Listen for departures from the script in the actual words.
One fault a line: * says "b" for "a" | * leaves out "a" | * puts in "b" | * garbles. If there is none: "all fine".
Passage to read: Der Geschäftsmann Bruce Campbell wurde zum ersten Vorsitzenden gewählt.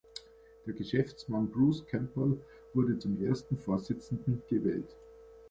all fine